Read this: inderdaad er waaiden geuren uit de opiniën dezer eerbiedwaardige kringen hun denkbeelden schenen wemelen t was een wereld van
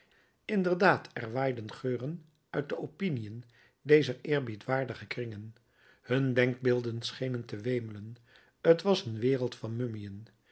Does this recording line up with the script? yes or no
no